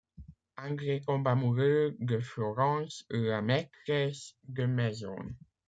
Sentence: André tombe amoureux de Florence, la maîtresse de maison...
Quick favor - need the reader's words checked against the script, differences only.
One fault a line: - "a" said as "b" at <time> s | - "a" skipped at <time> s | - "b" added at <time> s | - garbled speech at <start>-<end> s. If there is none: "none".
none